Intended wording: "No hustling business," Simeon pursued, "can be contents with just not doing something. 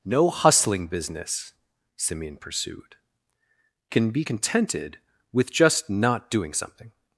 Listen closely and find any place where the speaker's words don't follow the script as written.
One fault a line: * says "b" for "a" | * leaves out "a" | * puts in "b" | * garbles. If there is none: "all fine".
* says "contented" for "contents"